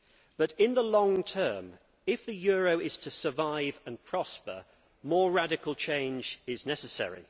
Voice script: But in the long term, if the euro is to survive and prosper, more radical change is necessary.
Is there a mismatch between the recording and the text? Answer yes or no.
no